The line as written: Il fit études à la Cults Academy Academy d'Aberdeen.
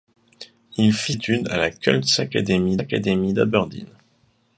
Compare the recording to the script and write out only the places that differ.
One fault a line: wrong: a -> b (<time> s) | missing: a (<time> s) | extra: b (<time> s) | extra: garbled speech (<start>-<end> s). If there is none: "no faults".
no faults